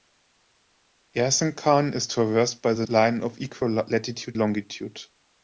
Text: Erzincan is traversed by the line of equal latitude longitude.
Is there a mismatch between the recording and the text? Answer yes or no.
no